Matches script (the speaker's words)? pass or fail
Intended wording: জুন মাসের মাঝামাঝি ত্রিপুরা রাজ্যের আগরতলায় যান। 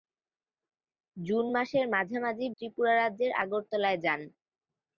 pass